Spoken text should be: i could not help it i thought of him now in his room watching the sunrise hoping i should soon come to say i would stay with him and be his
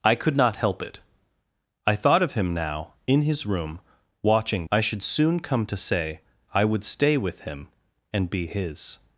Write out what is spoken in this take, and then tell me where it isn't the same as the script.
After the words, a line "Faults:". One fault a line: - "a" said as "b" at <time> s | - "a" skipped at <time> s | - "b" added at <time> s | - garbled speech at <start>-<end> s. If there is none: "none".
i could not help it i thought of him now in his room watching i should soon come to say i would stay with him and be his
Faults:
- "the sunrise hoping" skipped at 4.7 s